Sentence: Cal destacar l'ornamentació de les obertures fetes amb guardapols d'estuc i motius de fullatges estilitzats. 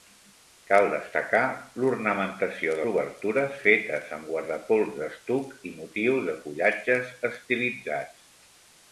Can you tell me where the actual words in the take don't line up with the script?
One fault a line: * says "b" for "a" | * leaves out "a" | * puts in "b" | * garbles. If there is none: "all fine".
* leaves out "les"